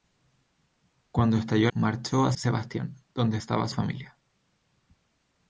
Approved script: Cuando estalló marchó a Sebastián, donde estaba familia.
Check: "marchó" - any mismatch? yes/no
no